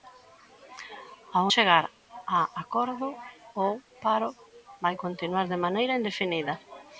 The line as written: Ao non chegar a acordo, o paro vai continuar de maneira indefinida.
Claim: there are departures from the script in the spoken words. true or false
true